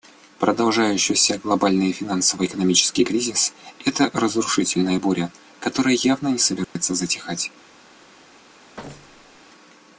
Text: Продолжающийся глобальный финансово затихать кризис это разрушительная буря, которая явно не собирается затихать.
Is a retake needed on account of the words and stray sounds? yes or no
yes